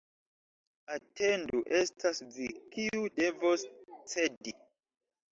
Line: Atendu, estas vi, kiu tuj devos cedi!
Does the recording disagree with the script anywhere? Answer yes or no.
yes